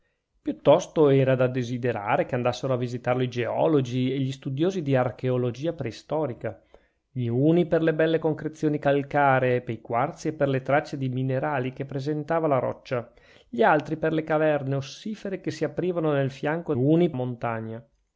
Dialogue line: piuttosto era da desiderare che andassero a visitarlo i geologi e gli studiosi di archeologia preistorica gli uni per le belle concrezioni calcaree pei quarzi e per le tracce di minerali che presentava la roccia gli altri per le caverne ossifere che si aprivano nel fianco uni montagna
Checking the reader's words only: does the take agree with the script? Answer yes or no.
yes